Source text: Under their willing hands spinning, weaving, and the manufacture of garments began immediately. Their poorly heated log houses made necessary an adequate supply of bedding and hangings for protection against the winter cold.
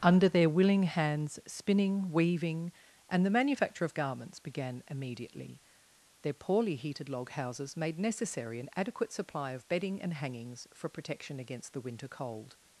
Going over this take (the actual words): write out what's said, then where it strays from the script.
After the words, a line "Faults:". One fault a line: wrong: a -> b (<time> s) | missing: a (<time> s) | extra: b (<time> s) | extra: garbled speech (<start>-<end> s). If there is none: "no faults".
Under their willing hands spinning, weaving, and the manufacture of garments began immediately. Their poorly heated log houses made necessary an adequate supply of bedding and hangings for protection against the winter cold.
Faults:
no faults